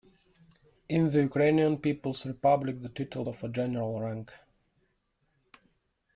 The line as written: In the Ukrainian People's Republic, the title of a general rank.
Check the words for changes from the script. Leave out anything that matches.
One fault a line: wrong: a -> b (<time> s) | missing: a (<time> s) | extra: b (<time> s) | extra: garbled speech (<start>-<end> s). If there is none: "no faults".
no faults